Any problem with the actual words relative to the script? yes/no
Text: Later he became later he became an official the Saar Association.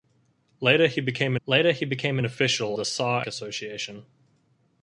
no